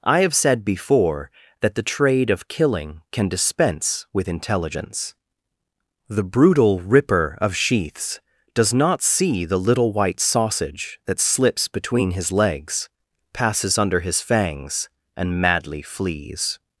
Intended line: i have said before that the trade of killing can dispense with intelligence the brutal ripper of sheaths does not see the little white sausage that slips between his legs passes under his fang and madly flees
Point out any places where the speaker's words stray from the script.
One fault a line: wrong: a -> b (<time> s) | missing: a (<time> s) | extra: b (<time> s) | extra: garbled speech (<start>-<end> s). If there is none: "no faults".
wrong: fang -> fangs (14.2 s)